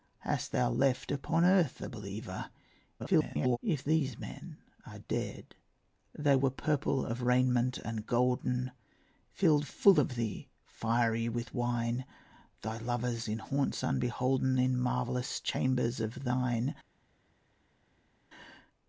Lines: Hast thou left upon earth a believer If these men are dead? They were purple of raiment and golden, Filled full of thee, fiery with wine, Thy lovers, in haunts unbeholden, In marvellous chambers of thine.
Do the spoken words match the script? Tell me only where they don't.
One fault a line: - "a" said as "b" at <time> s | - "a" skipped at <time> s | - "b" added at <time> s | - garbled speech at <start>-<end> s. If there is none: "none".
- garbled speech at 3.0-3.6 s